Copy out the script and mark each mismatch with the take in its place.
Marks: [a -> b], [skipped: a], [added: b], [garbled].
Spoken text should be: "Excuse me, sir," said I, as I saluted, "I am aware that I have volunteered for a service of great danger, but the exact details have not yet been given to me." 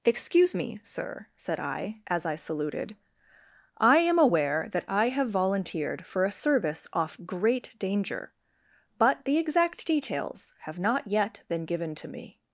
"Excuse me, sir," said I, as I saluted, "I am aware that I have volunteered for a service [of -> off] great danger, but the exact details have not yet been given to me."